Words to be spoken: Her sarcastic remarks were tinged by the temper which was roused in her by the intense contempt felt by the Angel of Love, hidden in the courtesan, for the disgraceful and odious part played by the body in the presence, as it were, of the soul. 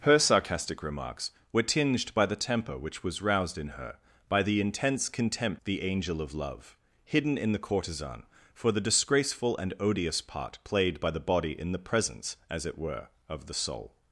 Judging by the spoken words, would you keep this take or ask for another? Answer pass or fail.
fail